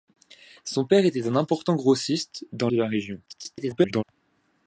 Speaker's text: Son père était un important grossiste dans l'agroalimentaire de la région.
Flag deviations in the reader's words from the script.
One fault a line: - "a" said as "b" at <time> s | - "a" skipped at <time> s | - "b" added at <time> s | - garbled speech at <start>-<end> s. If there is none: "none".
- "l'agroalimentaire" skipped at 2.7 s
- garbled speech at 3.3-4.0 s